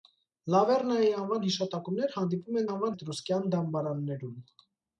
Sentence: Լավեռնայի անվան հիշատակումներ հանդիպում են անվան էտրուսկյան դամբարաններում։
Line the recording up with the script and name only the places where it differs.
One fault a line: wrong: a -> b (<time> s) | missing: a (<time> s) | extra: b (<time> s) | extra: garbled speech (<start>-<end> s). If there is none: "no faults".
no faults